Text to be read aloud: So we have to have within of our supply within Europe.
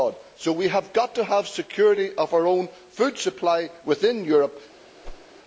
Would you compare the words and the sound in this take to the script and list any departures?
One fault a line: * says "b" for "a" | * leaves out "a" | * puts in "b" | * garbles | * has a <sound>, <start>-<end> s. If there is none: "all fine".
* puts in "got"
* says "security" for "within"
* puts in "own food"
* has a whoosh, 5.0-5.3 s